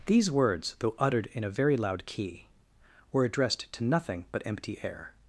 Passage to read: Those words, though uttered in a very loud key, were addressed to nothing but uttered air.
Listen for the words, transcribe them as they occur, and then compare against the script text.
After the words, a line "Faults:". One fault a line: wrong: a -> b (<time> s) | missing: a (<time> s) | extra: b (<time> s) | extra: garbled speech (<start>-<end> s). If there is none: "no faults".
These words, though uttered in a very loud key, were addressed to nothing but empty air.
Faults:
wrong: Those -> These (0.1 s)
wrong: uttered -> empty (4.5 s)